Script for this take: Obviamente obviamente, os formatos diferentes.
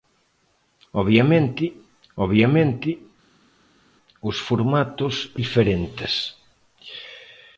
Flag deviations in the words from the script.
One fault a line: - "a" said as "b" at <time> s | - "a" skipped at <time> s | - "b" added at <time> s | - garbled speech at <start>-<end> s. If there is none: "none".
none